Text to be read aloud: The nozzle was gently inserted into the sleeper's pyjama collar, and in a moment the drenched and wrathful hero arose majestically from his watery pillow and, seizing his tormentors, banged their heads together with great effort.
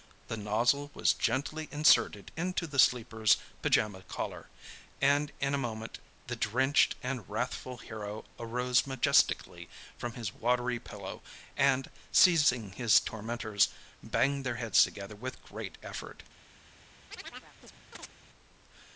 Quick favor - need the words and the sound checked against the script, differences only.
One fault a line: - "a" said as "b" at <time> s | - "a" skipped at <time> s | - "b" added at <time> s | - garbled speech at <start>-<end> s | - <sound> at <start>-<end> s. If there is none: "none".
- chirp at 17.1-18.1 s